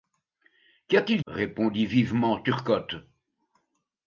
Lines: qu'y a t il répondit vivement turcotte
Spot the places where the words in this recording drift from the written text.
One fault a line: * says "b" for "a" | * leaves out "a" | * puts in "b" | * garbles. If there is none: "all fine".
all fine